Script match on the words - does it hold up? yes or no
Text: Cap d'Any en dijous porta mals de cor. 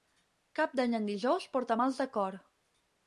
yes